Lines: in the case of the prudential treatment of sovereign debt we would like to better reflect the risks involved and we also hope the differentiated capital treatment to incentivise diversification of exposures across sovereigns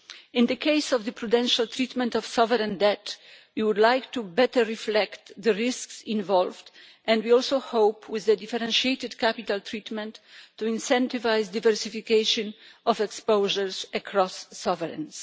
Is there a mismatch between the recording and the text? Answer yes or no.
yes